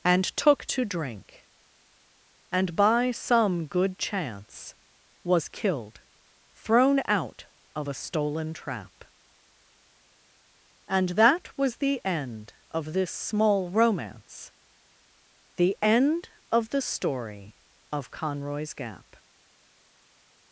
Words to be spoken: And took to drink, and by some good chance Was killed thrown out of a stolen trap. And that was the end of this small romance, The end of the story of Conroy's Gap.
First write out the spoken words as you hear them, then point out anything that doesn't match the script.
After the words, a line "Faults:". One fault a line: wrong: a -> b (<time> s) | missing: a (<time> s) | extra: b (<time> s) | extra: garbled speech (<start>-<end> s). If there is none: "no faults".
And took to drink, and by some good chance Was killed thrown out of a stolen trap. And that was the end of this small romance, The end of the story of Conroy's Gap.
Faults:
no faults